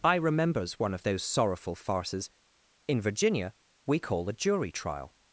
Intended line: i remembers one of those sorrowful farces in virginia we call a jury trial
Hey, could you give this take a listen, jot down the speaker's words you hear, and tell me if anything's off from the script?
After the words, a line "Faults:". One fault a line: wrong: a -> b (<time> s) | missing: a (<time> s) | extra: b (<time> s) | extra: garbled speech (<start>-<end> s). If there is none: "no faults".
i remembers one of those sorrowful farces in virginia we call a jury trial
Faults:
no faults